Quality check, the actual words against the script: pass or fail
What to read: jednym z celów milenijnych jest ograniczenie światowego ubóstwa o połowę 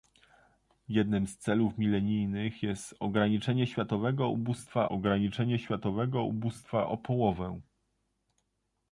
fail